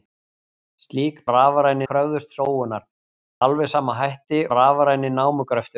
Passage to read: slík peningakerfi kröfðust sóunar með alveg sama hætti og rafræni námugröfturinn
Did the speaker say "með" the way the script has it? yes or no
no